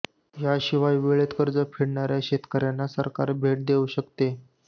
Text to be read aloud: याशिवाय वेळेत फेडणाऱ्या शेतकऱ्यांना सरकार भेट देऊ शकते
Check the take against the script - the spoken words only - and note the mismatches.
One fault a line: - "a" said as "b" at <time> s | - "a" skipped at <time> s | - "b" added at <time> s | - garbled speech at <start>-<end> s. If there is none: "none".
- "कर्ज" added at 1.4 s